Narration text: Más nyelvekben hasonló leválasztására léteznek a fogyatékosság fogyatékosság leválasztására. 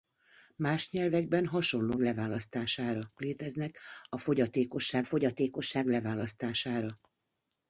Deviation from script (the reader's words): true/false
false